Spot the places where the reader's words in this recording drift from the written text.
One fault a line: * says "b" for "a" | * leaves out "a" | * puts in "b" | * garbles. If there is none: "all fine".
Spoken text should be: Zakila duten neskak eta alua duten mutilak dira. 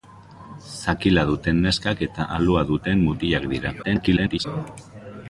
* garbles